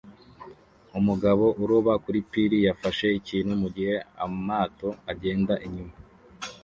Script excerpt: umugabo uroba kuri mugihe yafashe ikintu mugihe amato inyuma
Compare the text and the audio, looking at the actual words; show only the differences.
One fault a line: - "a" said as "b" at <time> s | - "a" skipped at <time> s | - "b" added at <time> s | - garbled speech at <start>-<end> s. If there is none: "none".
- "mugihe" said as "pir" at 2.3 s
- "agenda" added at 5.1 s